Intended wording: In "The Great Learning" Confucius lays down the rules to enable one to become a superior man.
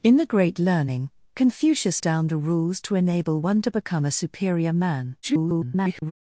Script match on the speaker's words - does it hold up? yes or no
no